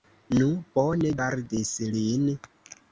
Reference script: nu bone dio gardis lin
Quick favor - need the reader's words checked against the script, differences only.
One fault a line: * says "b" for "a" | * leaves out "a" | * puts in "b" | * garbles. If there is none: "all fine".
* leaves out "dio"